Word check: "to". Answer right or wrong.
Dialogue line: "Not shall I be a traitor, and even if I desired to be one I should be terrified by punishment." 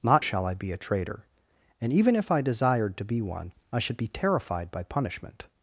right